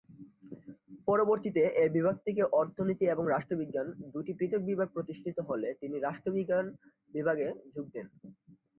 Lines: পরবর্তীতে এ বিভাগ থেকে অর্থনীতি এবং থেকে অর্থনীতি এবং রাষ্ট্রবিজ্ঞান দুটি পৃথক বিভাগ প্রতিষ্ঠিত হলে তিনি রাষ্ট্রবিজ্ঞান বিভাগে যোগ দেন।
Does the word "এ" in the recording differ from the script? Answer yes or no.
no